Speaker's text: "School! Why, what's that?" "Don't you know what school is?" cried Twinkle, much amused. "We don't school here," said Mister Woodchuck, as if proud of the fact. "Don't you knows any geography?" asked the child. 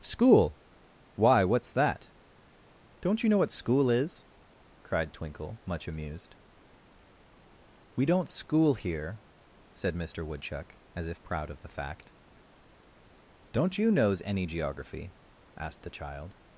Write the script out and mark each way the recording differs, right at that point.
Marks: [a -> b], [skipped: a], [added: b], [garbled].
"School! Why, what's that?" "Don't you know what school is?" cried Twinkle, much amused. "We don't school here," said Mister Woodchuck, as if proud of the fact. "Don't you knows any geography?" asked the child.